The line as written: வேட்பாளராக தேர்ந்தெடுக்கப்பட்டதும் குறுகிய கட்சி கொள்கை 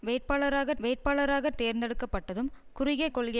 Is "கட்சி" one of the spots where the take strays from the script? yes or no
yes